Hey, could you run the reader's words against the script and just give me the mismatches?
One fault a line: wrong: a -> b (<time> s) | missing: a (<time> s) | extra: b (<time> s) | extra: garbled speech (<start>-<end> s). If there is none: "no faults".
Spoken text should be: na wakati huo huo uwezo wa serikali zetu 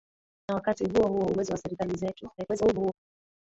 extra: garbled speech (2.4-2.9 s)